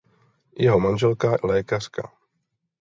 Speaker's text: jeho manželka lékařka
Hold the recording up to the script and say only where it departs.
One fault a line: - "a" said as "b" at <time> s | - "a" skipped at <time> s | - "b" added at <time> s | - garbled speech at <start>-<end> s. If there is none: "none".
none